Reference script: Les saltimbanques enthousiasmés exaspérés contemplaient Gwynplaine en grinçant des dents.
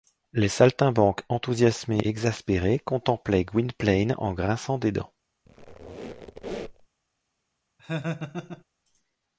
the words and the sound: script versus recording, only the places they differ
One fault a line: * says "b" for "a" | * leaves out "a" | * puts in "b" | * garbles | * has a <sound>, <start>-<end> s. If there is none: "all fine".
* has a squeak, 5.5-6.9 s
* has a laugh, 7.8-8.6 s